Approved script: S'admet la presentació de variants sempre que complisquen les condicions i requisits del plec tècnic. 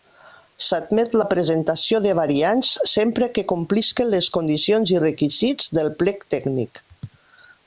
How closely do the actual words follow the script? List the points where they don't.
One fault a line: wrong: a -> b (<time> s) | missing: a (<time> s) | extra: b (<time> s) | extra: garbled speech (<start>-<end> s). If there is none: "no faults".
no faults